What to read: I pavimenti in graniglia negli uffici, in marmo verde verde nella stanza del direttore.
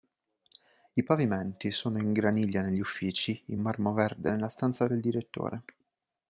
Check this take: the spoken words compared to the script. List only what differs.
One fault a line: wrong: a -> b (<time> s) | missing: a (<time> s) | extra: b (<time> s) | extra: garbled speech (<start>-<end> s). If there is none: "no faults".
extra: sono (1.7 s)
missing: verde (4.3 s)